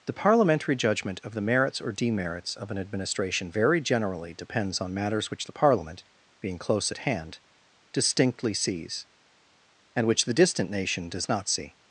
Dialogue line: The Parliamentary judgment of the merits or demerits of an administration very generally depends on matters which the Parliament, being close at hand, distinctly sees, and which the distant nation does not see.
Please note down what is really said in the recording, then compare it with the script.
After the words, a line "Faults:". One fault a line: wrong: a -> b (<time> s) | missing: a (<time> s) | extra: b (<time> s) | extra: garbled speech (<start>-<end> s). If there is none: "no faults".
The Parliamentary judgment of the merits or demerits of an administration very generally depends on matters which the Parliament, being close at hand, distinctly sees, and which the distant nation does not see.
Faults:
no faults